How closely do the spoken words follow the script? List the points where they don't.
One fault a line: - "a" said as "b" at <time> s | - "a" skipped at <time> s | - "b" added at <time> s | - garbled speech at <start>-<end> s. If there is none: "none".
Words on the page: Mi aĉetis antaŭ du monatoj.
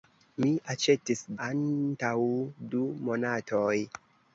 none